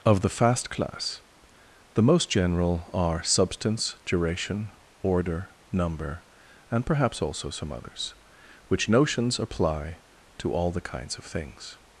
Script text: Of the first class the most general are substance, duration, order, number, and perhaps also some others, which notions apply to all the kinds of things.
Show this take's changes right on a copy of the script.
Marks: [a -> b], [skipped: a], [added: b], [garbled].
Of the [first -> fast] class the most general are substance, duration, order, number, and perhaps also some others, which notions apply to all the kinds of things.